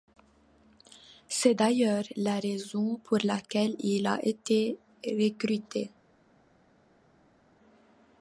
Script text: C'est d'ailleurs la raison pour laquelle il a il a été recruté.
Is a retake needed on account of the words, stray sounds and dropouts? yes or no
yes